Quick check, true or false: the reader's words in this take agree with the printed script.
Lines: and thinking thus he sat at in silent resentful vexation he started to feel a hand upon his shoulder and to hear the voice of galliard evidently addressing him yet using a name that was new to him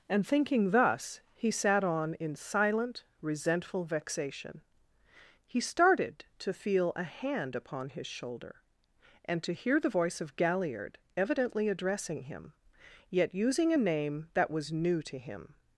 false